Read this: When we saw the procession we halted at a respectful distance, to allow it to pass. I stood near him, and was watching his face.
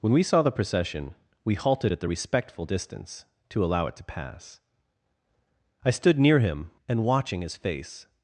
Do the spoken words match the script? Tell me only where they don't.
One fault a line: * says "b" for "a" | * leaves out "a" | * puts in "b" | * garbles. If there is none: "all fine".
* says "the" for "a"
* leaves out "was"